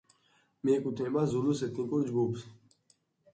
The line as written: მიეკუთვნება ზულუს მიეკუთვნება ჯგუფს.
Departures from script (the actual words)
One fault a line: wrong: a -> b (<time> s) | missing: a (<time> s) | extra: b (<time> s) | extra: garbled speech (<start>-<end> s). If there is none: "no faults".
wrong: მიეკუთვნება -> ეთნიკურ (1.7 s)